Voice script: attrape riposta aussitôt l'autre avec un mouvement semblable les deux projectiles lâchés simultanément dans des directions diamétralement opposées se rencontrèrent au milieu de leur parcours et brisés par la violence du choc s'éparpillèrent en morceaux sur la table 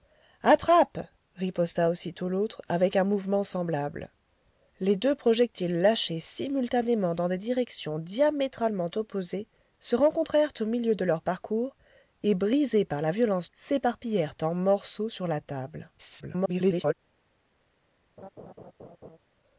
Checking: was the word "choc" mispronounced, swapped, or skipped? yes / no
yes